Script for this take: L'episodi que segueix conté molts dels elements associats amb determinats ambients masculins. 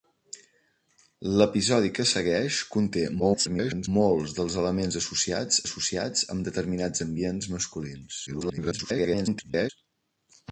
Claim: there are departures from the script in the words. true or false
true